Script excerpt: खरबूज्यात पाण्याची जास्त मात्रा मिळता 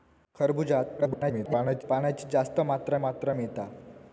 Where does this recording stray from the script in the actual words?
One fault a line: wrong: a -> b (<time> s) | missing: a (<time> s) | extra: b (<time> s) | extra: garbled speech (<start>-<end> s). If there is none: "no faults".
extra: garbled speech (1.0-1.8 s)
extra: मात्रा (2.9 s)